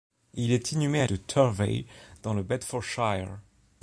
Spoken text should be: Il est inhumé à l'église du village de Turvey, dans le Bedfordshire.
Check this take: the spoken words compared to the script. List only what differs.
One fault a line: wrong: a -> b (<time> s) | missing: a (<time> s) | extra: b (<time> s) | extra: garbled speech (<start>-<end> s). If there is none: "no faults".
missing: l'église du village (1.1 s)